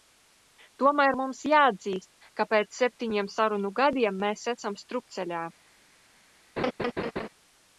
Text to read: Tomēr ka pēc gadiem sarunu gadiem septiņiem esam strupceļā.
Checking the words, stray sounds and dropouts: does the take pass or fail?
fail